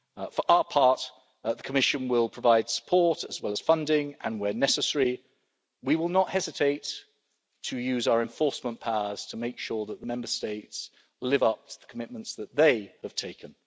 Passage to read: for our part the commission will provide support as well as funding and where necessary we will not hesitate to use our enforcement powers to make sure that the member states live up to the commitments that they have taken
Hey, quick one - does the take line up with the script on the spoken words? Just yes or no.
yes